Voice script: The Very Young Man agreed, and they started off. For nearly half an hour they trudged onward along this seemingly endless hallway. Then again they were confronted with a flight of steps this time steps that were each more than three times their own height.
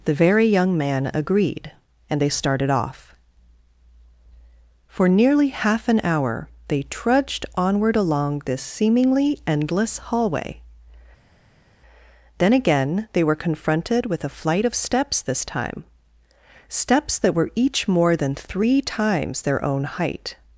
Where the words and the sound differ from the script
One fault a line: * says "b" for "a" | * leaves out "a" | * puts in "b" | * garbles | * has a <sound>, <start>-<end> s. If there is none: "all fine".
all fine